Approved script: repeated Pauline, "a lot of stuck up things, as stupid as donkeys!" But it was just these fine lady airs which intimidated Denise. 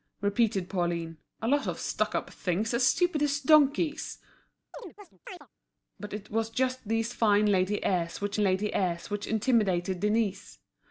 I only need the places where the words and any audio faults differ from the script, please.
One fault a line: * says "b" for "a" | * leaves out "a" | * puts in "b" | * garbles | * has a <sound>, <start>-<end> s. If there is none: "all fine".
* has a chirp, 4.7-5.5 s
* puts in "lady airs which"